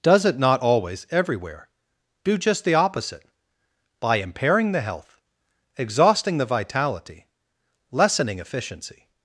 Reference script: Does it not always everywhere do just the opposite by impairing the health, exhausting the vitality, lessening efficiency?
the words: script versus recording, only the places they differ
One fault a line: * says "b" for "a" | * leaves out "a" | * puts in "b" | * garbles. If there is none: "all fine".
all fine